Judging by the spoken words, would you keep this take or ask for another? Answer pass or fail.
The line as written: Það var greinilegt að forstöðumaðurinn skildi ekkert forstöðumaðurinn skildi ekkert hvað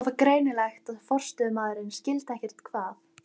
fail